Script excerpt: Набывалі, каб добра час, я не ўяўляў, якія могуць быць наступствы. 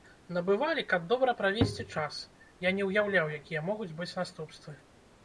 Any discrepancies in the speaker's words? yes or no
yes